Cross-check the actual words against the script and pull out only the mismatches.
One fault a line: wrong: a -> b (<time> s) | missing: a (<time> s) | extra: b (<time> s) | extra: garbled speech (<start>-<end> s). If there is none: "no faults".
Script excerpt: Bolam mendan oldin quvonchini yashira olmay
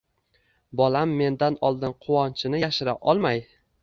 no faults